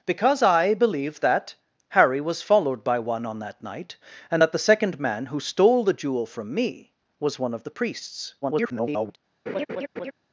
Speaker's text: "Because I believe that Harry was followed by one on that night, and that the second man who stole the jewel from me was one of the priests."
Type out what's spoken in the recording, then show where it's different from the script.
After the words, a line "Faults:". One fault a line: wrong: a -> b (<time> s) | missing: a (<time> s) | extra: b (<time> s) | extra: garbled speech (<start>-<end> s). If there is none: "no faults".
"Because I believe that Harry was followed by one on that night, and that the second man who stole the jewel from me was one of the priests." [garbled]
Faults:
extra: garbled speech (8.4-9.2 s)